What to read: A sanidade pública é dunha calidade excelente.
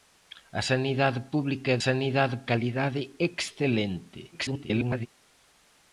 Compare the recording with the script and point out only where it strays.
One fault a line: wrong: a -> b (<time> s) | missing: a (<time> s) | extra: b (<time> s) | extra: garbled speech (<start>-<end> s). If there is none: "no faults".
wrong: dunha -> sanidade (1.9 s)
extra: garbled speech (4.3-5.1 s)